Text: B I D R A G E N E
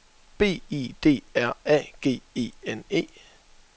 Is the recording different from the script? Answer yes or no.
no